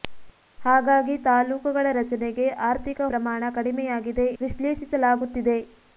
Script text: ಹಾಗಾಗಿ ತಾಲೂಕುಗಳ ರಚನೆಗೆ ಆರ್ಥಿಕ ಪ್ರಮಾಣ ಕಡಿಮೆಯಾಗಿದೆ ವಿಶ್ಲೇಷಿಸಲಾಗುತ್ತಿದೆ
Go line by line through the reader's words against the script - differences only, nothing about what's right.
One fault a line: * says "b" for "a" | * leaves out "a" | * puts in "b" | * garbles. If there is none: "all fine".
all fine